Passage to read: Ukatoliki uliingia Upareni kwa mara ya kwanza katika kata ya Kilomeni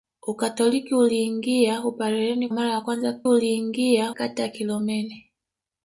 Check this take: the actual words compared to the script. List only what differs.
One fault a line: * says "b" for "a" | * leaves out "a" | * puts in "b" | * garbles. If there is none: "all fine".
* leaves out "kwa"
* says "uliingia" for "katika"